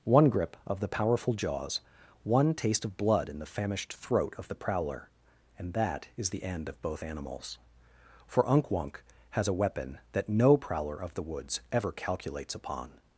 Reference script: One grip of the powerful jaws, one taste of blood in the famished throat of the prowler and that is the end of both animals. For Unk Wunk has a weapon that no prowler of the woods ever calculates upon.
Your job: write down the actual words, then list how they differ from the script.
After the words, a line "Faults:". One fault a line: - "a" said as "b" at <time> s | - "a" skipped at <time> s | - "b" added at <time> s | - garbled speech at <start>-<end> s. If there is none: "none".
One grip of the powerful jaws, one taste of blood in the famished throat of the prowler and that is the end of both animals. For Unk Wunk has a weapon that no prowler of the woods ever calculates upon.
Faults:
none